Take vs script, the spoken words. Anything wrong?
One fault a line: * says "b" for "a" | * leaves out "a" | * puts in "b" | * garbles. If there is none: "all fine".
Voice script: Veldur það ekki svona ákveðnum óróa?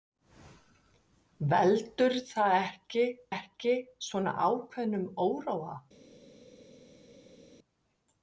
* puts in "ekki"